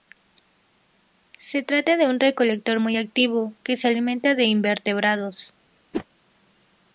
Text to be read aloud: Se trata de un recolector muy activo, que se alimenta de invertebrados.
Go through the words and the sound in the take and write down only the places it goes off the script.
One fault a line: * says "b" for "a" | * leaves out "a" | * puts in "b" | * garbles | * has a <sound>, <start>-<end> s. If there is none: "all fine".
* has a whoosh, 5.9-6.1 s